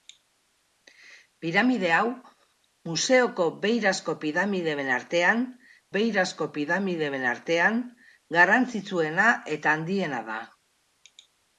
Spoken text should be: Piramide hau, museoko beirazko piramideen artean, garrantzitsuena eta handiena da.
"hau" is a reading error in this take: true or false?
false